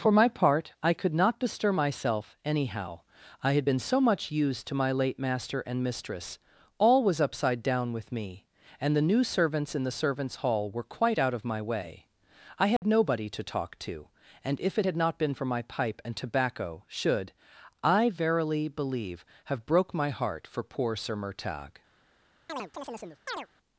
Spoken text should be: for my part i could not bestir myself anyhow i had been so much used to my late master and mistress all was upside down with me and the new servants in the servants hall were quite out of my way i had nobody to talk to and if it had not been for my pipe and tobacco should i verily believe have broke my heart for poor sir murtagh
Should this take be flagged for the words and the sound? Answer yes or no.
yes